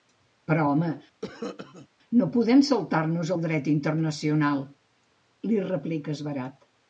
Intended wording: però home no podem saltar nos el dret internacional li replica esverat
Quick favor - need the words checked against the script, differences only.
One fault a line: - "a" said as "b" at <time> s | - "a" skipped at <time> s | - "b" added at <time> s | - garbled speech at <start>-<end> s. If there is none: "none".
none